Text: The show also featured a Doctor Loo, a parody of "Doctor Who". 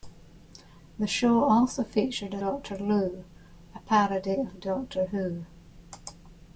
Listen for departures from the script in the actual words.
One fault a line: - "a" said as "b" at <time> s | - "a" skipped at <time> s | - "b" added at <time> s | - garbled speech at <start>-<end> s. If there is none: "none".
none